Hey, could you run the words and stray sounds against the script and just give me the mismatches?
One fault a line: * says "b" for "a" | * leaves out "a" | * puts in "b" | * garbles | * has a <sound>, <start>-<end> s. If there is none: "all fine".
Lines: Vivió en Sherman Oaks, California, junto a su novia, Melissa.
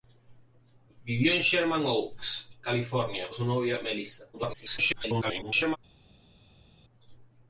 * leaves out "junto"
* garbles